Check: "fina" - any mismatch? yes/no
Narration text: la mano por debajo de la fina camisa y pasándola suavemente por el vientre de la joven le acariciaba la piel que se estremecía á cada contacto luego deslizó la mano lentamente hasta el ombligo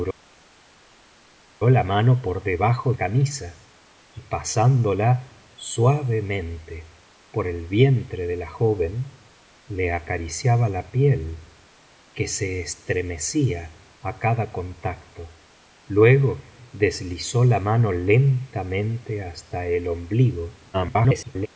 yes